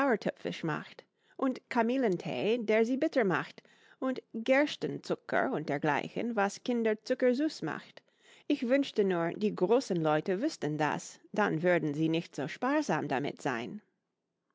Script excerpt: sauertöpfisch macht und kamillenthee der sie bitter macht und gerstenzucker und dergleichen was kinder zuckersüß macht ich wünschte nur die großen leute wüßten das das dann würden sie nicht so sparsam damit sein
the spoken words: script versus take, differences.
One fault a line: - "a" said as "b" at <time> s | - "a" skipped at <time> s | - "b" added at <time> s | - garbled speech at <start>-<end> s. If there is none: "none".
- "das" skipped at 11.2 s